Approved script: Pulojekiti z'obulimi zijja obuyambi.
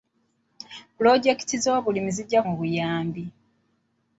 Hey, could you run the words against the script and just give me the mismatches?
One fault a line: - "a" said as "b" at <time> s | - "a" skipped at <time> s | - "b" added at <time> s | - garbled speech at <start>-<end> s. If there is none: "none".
none